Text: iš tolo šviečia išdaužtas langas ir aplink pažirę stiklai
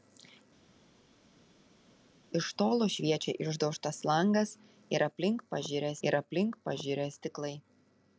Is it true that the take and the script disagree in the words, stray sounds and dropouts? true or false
true